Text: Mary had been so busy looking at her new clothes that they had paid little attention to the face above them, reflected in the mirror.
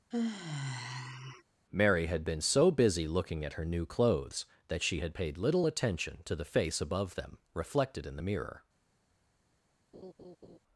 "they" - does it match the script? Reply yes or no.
no